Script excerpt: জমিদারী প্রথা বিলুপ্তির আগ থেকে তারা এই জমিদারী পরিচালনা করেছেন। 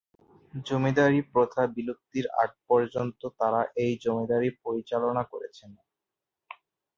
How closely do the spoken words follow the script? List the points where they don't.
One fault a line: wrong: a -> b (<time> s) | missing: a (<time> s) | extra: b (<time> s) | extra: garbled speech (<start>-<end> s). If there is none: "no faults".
wrong: থেকে -> পর্যন্ত (2.7 s)